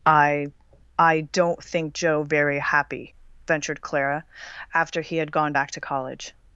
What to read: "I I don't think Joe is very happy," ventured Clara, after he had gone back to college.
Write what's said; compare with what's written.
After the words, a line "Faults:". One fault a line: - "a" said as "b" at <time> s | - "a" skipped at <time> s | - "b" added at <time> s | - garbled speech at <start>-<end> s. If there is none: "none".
"I I don't think Joe very happy," ventured Clara, after he had gone back to college.
Faults:
- "is" skipped at 2.2 s